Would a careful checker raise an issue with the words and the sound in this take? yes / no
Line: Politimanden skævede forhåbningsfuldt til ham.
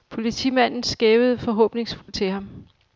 yes